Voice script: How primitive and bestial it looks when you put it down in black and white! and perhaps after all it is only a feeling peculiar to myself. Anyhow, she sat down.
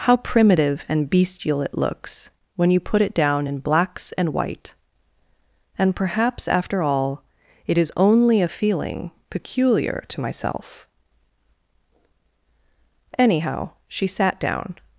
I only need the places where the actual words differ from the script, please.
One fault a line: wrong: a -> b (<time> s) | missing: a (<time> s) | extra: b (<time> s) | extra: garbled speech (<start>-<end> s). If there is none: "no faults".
wrong: black -> blacks (3.6 s)